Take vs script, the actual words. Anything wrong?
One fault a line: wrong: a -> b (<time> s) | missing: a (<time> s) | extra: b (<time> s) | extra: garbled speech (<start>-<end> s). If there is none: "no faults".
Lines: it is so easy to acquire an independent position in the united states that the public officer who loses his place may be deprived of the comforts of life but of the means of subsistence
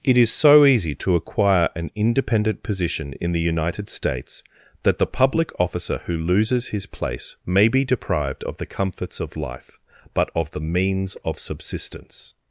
no faults